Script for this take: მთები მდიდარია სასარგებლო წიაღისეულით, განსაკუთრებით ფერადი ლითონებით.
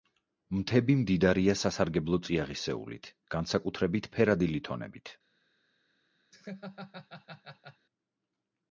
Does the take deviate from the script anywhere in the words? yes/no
no